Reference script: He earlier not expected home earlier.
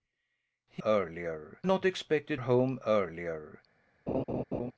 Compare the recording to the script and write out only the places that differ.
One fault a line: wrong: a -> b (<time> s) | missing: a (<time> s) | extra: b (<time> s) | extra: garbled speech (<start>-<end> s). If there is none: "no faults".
no faults